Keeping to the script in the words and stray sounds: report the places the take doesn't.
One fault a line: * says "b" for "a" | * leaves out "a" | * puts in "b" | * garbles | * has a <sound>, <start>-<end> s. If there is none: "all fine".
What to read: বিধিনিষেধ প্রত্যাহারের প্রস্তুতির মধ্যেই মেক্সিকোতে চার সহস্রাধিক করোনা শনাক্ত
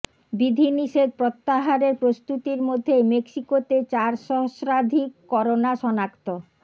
all fine